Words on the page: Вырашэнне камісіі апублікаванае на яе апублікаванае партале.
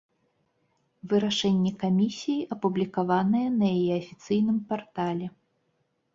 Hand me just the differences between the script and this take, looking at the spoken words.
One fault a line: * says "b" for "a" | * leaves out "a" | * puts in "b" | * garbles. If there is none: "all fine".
* says "афіцыйным" for "апублікаванае"